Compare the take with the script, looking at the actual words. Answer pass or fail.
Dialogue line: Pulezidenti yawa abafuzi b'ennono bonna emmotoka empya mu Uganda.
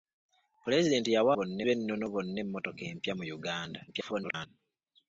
fail